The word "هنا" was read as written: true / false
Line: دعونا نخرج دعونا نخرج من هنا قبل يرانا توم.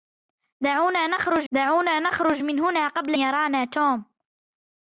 true